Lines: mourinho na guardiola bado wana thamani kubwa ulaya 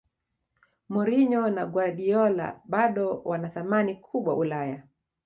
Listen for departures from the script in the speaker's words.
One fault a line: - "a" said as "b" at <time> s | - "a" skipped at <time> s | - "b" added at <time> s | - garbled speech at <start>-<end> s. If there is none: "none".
none